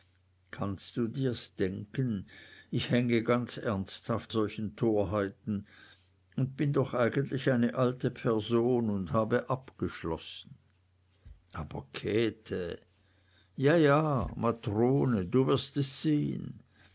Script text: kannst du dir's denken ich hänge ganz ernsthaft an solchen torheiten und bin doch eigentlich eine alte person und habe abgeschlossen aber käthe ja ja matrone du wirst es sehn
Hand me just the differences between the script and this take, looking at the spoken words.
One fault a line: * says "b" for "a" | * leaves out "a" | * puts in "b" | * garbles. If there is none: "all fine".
* leaves out "an"